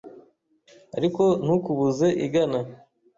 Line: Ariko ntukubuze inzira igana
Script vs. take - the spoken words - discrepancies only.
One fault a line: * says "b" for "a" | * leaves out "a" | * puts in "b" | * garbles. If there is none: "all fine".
* leaves out "inzira"